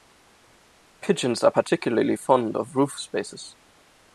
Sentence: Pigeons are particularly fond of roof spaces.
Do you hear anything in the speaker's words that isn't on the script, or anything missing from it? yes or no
no